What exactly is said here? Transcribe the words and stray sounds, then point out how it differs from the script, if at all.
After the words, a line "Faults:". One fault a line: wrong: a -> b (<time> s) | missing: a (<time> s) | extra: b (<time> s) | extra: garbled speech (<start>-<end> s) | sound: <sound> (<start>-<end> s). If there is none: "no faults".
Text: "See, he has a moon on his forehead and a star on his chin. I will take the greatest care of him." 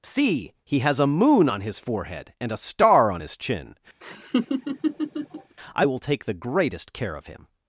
"See, he has a moon on his forehead and a star on his chin. I will take the greatest care of him."
Faults:
sound: laugh (4.0-5.6 s)